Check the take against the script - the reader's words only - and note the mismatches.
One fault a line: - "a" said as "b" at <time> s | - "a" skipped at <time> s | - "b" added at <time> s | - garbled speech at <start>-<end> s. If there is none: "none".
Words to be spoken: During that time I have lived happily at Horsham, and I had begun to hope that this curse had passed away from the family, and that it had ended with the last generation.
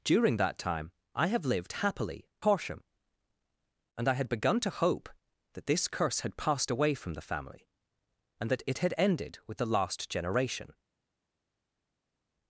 - "at" skipped at 2.3 s